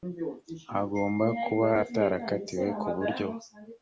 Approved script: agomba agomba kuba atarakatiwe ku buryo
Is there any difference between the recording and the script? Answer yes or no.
yes